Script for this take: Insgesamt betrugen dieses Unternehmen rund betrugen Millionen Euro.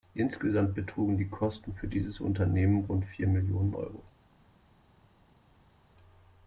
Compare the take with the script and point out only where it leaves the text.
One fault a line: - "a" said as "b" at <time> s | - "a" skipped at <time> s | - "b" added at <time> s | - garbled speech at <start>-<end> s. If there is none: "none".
- "die Kosten für" added at 1.2 s
- "betrugen" said as "vier" at 3.1 s